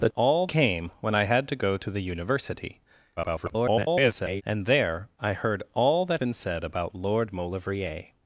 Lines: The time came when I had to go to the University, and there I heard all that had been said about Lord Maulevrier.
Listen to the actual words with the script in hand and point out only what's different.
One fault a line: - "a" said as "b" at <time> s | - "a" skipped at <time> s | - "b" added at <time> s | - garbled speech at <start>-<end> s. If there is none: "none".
- "time" said as "all" at 0.2 s
- garbled speech at 3.2-4.4 s
- "had" skipped at 6.2 s